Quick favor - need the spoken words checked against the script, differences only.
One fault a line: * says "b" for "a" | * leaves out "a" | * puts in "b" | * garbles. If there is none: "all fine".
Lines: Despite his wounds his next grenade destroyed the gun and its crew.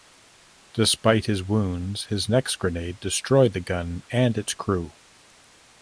all fine